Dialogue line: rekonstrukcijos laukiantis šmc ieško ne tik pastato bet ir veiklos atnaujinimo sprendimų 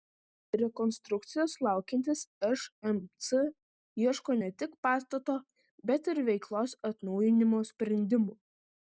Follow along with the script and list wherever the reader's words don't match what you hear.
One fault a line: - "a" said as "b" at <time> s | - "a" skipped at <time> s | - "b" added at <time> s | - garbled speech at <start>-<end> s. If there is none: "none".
none